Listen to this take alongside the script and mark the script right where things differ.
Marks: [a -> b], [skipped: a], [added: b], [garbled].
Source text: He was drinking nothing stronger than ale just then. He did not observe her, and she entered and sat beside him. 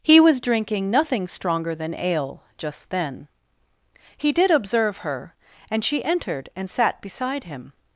He was drinking nothing stronger than ale just then. He did [skipped: not] observe her, and she entered and sat beside him.